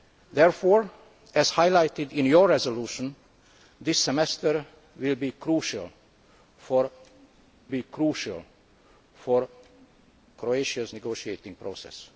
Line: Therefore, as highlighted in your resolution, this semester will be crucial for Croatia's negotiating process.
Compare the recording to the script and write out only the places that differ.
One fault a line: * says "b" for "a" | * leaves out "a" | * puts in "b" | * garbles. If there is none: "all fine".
* puts in "be crucial for"